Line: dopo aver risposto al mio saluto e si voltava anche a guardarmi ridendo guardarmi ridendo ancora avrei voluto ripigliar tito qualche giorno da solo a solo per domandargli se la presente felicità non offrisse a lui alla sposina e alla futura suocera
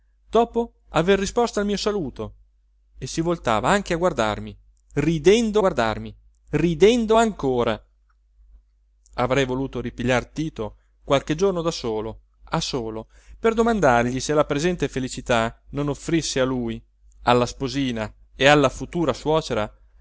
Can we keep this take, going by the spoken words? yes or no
yes